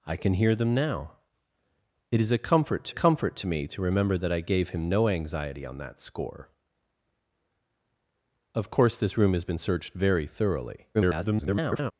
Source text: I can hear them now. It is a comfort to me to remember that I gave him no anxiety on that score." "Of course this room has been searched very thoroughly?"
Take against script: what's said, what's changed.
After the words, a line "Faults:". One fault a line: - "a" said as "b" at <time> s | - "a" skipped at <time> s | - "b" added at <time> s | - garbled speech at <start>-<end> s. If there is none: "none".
I can hear them now. It is a comfort to comfort to me to remember that I gave him no anxiety on that score." "Of course this room has been searched very thoroughly?" [garbled]
Faults:
- "comfort to" added at 2.9 s
- garbled speech at 10.9-11.9 s